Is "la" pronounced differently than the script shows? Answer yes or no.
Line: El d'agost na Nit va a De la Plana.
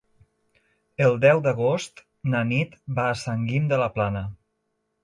no